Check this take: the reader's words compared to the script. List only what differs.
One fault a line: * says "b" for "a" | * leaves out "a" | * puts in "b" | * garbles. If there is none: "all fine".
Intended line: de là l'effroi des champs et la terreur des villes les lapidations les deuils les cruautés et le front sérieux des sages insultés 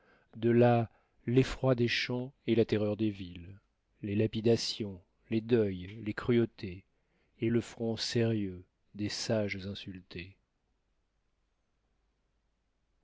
all fine